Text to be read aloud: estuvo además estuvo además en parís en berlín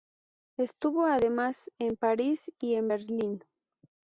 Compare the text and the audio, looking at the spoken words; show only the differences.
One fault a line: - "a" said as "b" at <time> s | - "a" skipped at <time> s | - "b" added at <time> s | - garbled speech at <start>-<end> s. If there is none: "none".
- "estuvo además" skipped at 1.7 s
- "y" added at 2.6 s